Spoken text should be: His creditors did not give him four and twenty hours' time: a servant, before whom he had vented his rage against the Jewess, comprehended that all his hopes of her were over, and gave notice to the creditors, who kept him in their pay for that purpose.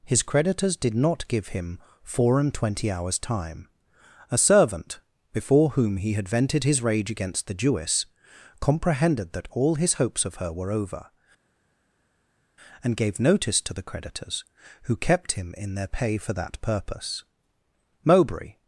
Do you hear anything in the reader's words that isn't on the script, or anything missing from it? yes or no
yes